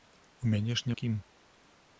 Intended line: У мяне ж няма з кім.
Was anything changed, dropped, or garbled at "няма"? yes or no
yes